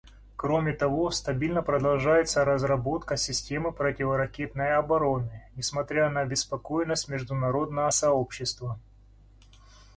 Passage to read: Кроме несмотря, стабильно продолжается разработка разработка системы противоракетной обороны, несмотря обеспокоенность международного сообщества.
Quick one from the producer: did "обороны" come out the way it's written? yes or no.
yes